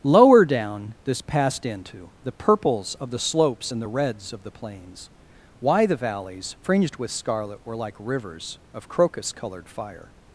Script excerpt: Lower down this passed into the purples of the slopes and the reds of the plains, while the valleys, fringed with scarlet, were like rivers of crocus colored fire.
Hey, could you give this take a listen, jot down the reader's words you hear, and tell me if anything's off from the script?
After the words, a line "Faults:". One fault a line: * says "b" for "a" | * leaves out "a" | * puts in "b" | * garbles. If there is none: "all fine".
Lower down this passed into the purples of the slopes and the reds of the plains, why the valleys, fringed with scarlet, were like rivers of crocus colored fire.
Faults:
* says "why" for "while"